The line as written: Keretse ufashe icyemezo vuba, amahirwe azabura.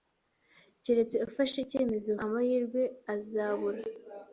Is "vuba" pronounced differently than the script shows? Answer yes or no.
yes